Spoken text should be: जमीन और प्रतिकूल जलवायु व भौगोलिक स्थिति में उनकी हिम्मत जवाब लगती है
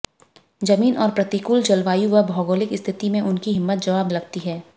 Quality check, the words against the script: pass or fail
pass